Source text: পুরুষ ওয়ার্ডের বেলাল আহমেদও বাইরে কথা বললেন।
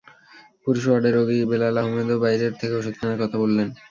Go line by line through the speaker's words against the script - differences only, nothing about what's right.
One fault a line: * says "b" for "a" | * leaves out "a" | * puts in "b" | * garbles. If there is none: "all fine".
* puts in "রোগী"
* puts in "থেকে ওষুধ কেনার"